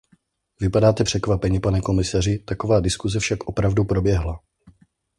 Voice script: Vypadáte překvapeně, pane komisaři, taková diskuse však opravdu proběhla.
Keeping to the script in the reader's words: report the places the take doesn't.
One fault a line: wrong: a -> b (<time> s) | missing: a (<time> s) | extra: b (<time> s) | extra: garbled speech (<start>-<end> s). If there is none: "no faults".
no faults